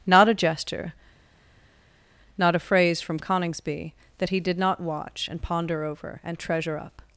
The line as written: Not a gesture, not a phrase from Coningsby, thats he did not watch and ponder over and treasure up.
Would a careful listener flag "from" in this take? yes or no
no